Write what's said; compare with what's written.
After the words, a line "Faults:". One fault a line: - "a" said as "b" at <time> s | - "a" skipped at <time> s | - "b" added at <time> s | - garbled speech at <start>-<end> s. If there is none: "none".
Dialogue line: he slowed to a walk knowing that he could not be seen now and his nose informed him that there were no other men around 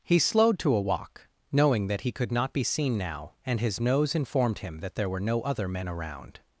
he slowed to a walk knowing that he could not be seen now and his nose informed him that there were no other men around
Faults:
none